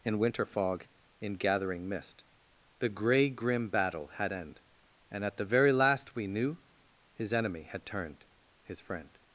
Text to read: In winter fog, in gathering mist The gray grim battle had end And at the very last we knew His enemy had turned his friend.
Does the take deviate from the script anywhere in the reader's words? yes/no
no